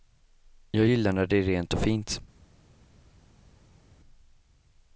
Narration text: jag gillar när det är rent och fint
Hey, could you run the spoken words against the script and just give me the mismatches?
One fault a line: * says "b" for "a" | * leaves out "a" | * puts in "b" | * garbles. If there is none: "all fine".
all fine